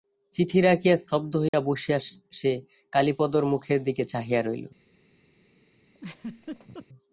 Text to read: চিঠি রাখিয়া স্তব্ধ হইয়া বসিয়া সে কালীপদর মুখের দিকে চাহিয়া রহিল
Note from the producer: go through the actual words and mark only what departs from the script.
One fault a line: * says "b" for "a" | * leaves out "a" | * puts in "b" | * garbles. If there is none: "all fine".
all fine